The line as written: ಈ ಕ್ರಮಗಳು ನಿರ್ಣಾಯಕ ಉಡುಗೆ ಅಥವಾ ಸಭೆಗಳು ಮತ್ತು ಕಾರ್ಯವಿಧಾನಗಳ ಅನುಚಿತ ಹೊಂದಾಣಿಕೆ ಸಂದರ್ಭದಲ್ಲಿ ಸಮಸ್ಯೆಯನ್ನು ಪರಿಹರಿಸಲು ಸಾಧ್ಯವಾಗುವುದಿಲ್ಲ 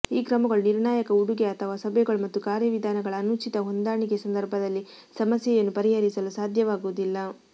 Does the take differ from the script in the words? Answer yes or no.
no